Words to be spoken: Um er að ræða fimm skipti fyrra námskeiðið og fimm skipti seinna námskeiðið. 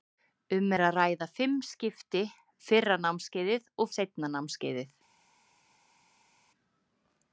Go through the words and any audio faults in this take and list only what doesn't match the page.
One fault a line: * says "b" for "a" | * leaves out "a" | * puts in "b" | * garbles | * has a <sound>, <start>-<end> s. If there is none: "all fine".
* leaves out "fimm skipti"